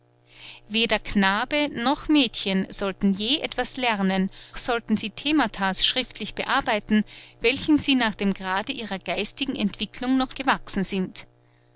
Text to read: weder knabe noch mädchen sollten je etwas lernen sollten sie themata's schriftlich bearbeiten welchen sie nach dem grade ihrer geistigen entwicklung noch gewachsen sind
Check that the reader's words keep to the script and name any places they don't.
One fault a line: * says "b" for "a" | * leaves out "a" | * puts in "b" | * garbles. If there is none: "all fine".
all fine